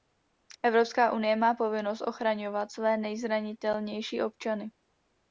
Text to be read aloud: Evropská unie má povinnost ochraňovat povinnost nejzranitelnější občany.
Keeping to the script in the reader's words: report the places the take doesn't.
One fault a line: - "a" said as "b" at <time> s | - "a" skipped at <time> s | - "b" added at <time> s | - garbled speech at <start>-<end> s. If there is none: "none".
- "povinnost" said as "své" at 2.7 s